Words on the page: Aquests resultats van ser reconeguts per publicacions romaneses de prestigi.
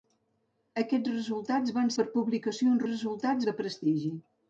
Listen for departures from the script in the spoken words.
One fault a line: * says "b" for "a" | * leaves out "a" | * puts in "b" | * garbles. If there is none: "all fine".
* leaves out "ser reconeguts"
* says "resultats" for "romaneses"